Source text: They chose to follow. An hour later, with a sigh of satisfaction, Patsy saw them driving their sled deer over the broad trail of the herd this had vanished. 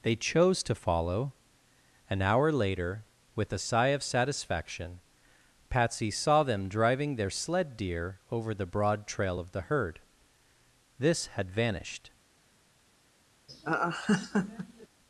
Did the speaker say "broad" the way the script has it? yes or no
yes